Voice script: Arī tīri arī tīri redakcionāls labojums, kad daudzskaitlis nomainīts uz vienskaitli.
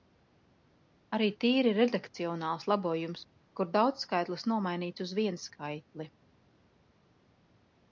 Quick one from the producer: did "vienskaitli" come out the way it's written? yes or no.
yes